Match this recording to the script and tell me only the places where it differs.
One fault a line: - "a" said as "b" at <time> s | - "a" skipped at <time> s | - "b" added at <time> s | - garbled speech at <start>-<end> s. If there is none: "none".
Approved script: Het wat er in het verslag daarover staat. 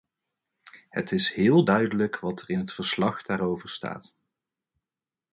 - "is heel duidelijk" added at 1.1 s